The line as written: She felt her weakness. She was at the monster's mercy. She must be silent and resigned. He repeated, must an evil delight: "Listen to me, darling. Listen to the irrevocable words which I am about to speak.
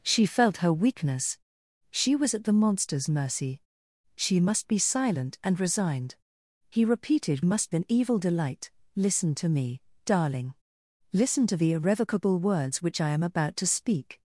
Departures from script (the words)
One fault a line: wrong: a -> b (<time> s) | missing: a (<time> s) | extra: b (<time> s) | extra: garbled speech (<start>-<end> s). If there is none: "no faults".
no faults